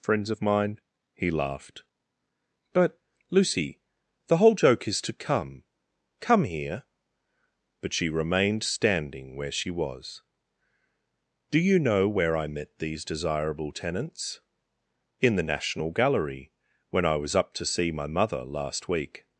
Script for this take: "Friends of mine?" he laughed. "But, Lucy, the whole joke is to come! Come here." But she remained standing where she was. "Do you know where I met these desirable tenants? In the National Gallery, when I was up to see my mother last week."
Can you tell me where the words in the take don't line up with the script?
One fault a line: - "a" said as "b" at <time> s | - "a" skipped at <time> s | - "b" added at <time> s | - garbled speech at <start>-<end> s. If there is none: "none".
none